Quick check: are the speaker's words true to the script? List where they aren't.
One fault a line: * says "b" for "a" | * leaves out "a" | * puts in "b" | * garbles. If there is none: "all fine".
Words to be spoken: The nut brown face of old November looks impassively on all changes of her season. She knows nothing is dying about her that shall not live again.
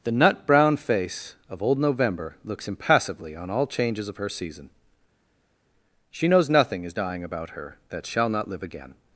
all fine